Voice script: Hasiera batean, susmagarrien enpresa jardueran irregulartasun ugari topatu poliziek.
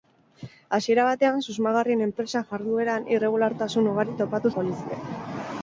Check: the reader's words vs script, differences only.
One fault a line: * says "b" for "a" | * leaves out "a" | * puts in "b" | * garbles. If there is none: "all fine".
all fine